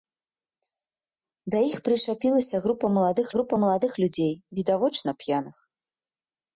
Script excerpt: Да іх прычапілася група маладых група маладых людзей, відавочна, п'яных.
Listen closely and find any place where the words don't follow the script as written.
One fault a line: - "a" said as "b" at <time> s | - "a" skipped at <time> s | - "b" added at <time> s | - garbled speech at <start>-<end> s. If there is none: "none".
none